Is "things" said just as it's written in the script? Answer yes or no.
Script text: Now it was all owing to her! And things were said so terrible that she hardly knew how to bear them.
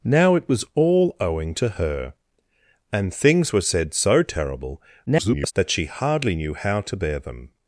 yes